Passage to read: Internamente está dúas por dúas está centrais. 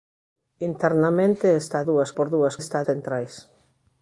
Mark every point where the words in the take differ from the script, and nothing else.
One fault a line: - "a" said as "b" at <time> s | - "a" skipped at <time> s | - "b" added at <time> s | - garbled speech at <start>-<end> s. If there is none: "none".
none